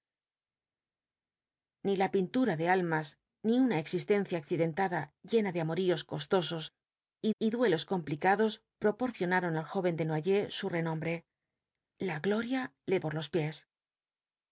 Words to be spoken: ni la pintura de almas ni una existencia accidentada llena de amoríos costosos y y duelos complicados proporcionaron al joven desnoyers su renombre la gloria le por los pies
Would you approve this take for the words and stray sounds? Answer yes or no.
yes